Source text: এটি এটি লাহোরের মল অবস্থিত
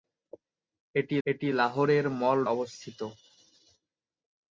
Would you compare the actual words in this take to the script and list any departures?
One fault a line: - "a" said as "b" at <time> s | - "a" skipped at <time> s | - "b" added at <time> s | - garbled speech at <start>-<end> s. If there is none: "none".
none